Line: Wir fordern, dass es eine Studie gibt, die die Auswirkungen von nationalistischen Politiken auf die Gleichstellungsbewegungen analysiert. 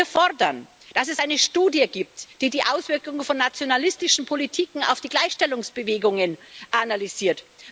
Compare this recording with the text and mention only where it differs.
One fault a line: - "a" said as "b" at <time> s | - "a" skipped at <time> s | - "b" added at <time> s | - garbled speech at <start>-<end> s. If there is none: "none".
none